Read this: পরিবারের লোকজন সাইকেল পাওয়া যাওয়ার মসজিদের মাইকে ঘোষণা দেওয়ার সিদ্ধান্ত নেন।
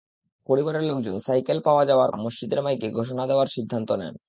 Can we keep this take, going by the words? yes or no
yes